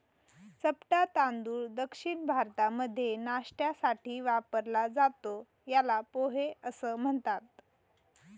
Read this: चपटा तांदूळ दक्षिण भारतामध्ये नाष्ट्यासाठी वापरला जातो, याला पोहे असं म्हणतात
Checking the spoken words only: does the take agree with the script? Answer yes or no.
yes